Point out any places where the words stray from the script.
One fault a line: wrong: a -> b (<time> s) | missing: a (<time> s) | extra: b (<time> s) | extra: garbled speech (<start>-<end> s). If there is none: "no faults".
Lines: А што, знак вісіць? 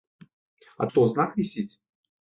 no faults